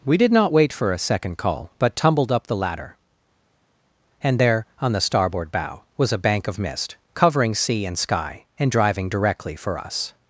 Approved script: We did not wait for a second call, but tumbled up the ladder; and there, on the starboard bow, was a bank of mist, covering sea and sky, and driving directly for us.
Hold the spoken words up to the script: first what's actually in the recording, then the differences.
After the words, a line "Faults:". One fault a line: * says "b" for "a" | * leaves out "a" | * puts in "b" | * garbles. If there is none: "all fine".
We did not wait for a second call, but tumbled up the ladder; and there, on the starboard bow, was a bank of mist, covering sea and sky, and driving directly for us.
Faults:
all fine